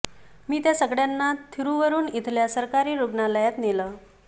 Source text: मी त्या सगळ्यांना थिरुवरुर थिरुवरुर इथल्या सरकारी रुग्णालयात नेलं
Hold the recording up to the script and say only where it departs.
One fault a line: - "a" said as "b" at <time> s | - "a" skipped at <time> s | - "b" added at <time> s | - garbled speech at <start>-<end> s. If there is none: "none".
- "थिरुवरुर" skipped at 2.1 s